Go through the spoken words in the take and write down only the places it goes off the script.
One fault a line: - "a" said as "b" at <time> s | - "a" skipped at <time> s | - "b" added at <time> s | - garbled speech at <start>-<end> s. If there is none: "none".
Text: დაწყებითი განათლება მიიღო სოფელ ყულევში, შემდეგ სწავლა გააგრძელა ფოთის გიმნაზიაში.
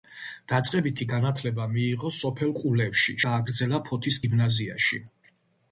- "შემდეგ სწავლა" skipped at 3.2 s